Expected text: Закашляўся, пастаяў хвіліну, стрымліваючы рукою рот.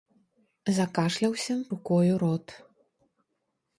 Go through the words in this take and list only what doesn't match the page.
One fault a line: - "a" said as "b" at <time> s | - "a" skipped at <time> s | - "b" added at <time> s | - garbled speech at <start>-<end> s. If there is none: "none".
- "пастаяў хвіліну стрымліваючы" skipped at 1.6 s